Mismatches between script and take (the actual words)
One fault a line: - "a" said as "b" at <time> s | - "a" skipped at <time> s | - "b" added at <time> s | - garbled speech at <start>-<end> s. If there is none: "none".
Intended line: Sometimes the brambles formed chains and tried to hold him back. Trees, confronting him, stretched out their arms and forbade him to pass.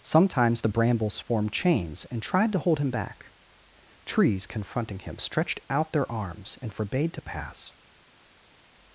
- "him" skipped at 7.1 s